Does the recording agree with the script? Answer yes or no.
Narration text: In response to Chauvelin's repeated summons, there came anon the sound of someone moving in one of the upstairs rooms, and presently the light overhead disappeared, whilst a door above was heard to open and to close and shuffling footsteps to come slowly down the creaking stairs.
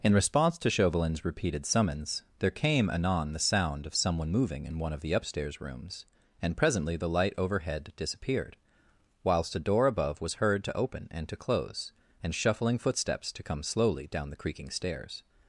yes